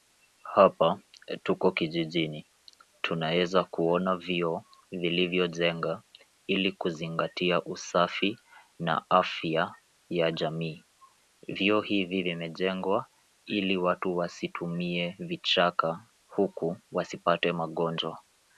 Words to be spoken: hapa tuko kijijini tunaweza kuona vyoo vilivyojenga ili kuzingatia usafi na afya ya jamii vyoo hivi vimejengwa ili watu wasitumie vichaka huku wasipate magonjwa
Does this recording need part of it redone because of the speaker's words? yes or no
no